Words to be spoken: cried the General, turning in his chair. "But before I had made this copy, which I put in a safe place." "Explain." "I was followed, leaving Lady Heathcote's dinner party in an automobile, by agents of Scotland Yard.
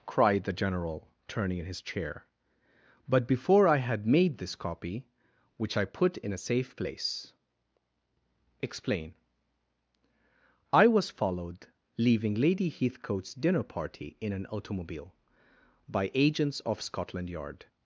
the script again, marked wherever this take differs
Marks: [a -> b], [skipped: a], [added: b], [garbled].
cried the General, turning in his chair. "But before I had made this copy, which I put in a safe place." "Explain." "I was followed, leaving Lady Heathcote's dinner party in an automobile, by agents of Scotland Yard.